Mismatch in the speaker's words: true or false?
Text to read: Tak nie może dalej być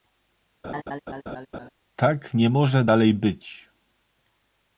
false